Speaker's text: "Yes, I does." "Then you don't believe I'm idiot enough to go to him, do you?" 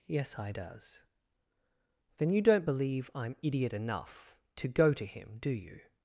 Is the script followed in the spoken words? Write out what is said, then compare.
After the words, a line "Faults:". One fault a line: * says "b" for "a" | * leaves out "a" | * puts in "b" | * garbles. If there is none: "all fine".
"Yes, I does." "Then you don't believe I'm idiot enough to go to him, do you?"
Faults:
all fine